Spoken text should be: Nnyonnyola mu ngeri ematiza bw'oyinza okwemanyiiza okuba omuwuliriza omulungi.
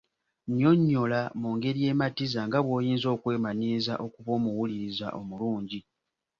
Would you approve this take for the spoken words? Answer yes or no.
no